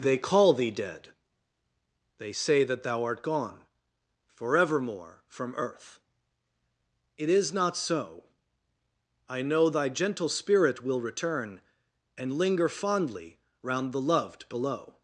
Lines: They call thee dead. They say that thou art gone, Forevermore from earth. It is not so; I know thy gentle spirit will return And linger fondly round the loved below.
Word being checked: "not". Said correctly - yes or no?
yes